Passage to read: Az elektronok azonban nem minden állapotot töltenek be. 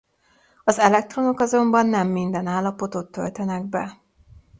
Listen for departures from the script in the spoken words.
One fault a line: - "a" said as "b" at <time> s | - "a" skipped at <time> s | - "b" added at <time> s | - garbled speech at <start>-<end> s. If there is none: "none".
none